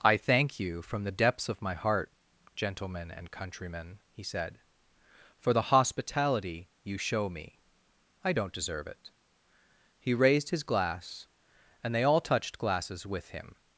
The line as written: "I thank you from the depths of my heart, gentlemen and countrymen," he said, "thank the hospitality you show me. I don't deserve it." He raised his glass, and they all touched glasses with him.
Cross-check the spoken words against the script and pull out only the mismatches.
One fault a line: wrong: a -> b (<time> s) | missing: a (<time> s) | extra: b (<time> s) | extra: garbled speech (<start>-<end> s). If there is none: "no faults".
wrong: thank -> for (5.4 s)